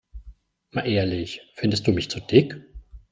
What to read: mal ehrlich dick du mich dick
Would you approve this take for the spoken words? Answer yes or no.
no